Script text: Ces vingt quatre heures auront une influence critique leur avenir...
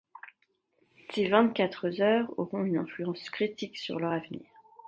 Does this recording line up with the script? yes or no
no